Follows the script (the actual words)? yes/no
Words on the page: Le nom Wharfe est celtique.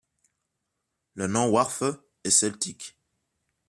yes